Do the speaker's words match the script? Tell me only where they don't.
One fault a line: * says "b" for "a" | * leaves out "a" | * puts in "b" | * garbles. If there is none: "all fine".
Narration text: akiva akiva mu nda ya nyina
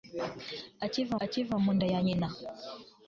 all fine